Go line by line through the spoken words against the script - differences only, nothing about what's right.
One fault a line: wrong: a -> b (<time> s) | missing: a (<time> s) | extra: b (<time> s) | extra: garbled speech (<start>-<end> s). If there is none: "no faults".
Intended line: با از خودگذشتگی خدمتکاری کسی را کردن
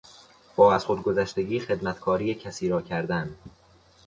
no faults